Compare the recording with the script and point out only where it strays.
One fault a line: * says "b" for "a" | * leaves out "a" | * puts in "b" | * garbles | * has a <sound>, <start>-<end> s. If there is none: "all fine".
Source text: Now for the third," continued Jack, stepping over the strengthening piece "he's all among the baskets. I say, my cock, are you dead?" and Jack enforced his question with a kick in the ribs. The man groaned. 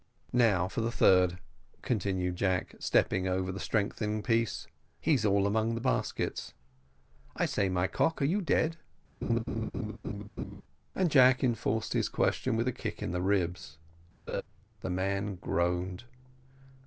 * has a laugh, 9.2-10.6 s
* has a laugh, 14.3-14.4 s